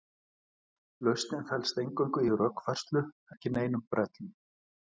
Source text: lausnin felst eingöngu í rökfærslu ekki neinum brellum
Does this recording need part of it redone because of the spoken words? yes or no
no